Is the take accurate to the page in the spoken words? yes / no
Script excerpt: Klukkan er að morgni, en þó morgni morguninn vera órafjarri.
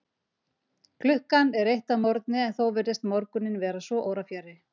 no